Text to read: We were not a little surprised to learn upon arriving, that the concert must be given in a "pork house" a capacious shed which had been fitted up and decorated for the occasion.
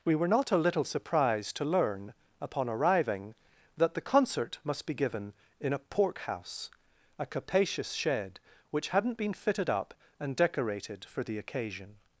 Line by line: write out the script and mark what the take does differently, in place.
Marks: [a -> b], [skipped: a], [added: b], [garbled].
We were not a little surprised to learn upon arriving, that the concert must be given in a "pork house" a capacious shed which [had -> hadn't] been fitted up and decorated for the occasion.